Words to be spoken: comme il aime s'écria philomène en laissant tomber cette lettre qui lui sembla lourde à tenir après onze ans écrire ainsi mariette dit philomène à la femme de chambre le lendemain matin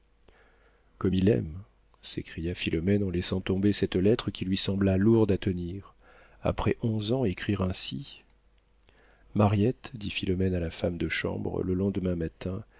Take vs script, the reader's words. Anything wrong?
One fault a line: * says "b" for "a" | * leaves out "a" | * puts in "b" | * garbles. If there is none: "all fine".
all fine